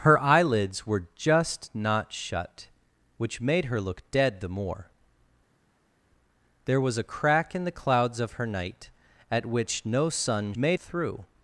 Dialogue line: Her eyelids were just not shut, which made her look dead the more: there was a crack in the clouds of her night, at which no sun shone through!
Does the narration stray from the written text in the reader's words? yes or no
yes